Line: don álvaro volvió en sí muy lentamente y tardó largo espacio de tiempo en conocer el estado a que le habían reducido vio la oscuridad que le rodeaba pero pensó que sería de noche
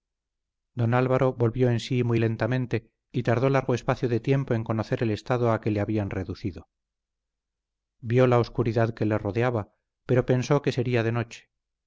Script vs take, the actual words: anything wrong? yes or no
no